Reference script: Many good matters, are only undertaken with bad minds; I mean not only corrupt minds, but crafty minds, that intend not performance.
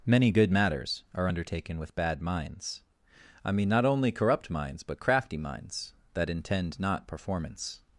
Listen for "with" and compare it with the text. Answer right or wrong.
right